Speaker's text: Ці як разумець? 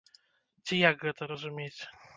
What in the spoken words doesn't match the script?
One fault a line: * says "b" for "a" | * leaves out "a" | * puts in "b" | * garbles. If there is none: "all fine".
* puts in "гэта"